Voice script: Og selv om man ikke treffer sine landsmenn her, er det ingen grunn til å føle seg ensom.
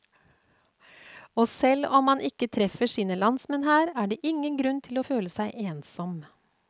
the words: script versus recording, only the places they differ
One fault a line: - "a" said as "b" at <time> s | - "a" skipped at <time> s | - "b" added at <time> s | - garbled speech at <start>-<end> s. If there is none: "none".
none